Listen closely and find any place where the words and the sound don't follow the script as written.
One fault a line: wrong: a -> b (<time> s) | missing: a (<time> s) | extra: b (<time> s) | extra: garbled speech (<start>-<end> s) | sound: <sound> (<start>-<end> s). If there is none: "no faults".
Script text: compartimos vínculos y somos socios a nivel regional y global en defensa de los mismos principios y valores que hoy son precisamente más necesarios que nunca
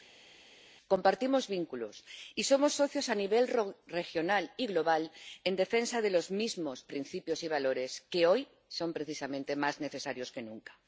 no faults